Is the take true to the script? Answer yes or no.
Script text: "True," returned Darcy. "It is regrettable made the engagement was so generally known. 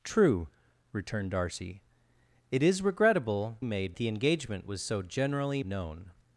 yes